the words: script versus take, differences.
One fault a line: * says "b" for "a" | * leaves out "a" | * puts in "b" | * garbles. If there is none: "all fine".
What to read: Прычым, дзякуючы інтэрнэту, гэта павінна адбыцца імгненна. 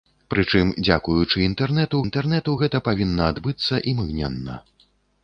* puts in "інтэрнэту"